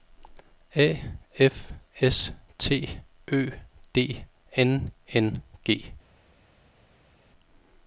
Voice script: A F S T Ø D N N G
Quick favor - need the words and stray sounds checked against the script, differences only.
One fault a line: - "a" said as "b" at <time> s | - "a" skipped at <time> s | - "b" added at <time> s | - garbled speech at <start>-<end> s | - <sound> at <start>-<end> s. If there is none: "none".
none